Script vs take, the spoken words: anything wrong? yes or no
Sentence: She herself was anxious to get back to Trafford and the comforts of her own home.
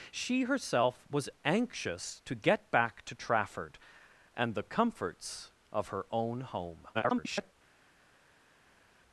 yes